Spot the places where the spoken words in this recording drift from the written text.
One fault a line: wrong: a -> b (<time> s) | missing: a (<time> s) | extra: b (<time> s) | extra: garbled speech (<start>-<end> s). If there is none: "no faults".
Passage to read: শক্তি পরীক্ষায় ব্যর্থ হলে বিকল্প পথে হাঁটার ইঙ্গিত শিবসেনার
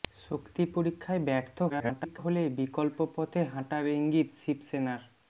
extra: garbled speech (1.7-2.2 s)